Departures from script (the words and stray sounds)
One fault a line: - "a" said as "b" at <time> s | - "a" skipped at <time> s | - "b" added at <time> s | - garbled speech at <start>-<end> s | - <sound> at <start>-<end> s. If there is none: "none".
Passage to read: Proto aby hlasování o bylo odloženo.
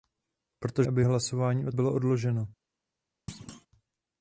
- thud at 3.3-3.7 s